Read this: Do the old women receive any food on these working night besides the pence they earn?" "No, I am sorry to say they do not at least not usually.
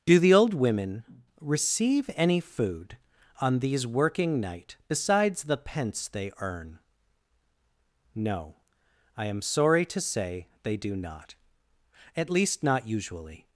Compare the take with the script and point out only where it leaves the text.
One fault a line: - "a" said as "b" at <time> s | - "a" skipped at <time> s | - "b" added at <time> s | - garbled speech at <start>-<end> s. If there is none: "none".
none